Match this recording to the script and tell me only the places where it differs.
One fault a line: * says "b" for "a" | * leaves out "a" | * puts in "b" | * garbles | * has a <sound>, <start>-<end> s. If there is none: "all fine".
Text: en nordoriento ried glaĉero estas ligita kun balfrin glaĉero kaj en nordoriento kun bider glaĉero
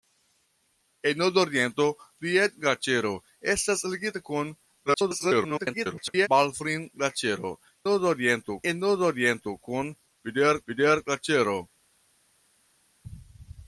* garbles
* says "nordoriento" for "kaj"
* puts in "bider"